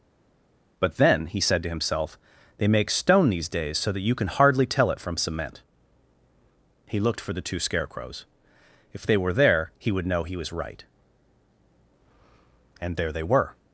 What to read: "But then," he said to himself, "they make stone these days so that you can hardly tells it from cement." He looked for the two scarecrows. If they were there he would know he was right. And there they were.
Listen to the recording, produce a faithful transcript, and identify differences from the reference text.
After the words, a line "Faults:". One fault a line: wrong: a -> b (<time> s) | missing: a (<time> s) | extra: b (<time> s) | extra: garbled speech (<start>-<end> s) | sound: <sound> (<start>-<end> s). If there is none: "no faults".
"But then," he said to himself, "they make stone these days so that you can hardly tell it from cement." He looked for the two scarecrows. If they were there he would know he was right. And there they were.
Faults:
wrong: tells -> tell (4.7 s)